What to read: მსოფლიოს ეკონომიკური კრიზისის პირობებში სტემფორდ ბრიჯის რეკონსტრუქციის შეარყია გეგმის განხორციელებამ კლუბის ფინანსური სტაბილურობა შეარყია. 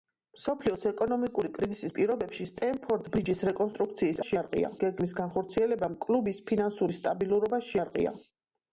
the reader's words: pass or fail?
pass